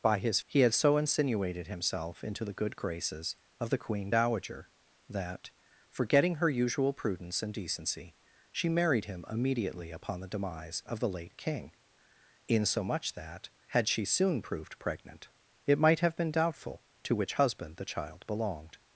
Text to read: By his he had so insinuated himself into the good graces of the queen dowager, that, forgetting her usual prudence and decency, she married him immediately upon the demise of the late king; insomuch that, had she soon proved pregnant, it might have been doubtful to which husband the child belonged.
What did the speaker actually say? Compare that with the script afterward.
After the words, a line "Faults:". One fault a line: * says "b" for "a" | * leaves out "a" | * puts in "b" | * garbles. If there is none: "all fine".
By his he had so insinuated himself into the good graces of the queen dowager, that, forgetting her usual prudence and decency, she married him immediately upon the demise of the late king; insomuch that, had she soon proved pregnant, it might have been doubtful to which husband the child belonged.
Faults:
all fine